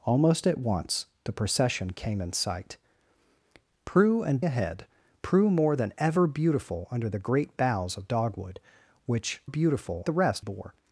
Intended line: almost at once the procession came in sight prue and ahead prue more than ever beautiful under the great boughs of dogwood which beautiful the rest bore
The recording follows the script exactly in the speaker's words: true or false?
true